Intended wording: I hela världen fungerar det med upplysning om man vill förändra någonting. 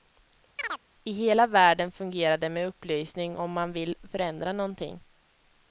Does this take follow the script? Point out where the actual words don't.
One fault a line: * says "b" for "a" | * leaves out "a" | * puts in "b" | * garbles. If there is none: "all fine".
all fine